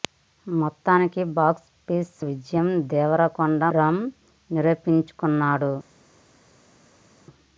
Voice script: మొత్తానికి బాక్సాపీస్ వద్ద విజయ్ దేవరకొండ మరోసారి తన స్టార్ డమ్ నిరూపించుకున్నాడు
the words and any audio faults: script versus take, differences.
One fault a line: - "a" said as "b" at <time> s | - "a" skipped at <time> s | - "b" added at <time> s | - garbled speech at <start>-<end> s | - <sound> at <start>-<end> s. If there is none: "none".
- "వద్ద" skipped at 2.1 s
- "మరోసారి తన స్టార్" skipped at 3.6 s